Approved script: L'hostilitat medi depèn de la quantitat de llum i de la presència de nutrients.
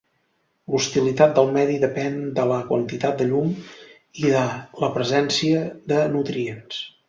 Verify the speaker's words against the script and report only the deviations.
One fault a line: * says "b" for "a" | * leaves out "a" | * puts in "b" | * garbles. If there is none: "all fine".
* puts in "del"